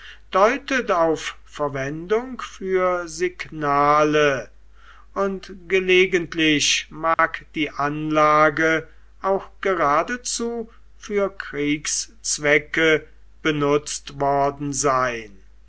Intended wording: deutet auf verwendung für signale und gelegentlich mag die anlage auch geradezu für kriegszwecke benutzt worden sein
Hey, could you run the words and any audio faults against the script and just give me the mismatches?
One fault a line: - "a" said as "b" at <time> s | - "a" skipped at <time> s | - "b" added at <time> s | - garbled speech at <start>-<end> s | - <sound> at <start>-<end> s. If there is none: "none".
- dropout at 7.1-7.2 s